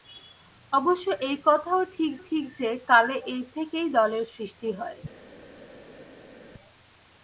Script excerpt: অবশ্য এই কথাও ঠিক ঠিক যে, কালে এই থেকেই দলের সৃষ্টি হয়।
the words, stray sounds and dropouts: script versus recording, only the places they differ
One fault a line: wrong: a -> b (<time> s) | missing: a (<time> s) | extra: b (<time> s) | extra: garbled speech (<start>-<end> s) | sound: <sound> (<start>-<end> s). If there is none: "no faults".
no faults